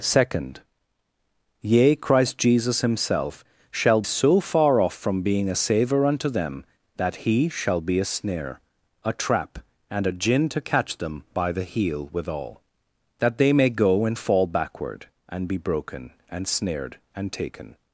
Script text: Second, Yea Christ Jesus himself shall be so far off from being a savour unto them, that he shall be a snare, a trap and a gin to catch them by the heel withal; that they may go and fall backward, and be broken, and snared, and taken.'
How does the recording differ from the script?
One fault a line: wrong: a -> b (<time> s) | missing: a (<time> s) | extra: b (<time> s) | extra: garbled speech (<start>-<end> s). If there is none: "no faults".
missing: be (4.0 s)